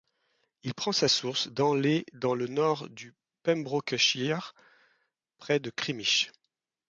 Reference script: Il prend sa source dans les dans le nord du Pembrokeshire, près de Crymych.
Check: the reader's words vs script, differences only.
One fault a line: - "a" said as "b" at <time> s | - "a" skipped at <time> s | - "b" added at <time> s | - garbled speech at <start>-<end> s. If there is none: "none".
none